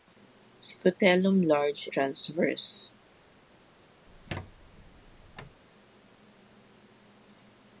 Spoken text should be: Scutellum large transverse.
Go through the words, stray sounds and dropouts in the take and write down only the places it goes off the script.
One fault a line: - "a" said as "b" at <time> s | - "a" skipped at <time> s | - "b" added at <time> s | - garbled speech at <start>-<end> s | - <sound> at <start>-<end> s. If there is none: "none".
- squeak at 4.1-5.6 s